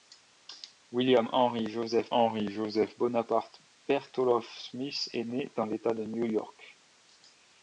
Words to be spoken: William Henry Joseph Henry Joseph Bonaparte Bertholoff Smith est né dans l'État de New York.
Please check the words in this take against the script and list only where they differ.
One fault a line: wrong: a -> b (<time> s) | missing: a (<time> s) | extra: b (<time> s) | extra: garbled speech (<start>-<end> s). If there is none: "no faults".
no faults